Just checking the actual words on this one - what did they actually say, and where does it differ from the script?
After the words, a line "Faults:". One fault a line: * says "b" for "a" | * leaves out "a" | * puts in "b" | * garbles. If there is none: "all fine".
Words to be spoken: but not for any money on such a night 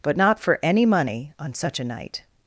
but not for any money on such a night
Faults:
all fine